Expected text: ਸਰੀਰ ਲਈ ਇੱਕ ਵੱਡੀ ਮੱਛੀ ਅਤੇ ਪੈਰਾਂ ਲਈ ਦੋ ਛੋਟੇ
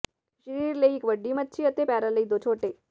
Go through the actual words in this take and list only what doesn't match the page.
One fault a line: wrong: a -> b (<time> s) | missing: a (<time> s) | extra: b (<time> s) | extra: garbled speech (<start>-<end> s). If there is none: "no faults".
no faults